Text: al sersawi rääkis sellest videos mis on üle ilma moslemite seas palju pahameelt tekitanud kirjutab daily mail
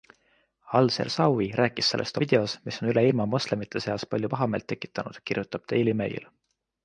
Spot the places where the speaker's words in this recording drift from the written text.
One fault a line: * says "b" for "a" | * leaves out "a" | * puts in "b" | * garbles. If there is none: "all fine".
all fine